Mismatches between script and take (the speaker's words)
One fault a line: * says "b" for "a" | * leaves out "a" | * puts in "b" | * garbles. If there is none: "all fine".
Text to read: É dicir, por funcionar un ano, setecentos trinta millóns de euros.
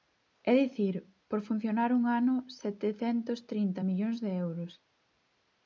all fine